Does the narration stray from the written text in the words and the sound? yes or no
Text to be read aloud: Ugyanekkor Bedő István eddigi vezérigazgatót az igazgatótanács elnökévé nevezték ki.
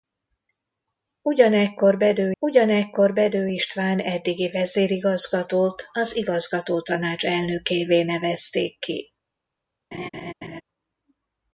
yes